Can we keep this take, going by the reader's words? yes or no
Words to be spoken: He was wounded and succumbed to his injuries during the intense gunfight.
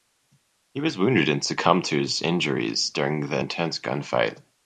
yes